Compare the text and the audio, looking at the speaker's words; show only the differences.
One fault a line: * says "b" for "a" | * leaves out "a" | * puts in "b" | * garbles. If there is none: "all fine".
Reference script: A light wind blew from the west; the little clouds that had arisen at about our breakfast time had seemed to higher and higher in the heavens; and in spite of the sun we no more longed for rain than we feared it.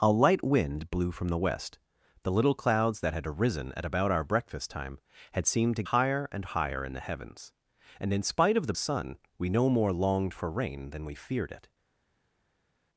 all fine